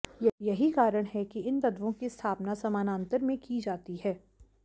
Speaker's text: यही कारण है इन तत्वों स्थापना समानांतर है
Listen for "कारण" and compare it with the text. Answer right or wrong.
right